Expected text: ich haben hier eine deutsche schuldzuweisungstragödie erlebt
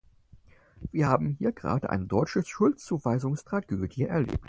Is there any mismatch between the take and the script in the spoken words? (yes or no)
yes